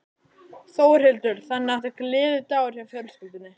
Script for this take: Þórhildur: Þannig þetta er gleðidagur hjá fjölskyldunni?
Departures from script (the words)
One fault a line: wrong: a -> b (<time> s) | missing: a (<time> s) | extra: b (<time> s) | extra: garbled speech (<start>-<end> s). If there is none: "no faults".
no faults